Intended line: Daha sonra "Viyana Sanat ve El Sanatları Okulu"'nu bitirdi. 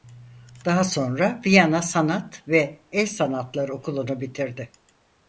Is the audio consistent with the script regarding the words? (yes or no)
yes